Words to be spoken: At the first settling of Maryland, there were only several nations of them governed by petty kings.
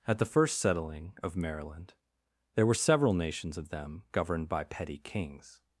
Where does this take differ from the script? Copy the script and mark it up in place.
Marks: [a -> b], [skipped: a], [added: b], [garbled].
At the first settling of Maryland, there were [skipped: only] several nations of them governed by petty kings.